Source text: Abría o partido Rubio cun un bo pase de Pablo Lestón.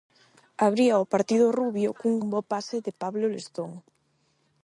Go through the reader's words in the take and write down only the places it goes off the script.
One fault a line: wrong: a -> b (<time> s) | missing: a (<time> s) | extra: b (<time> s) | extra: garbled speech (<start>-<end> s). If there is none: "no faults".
no faults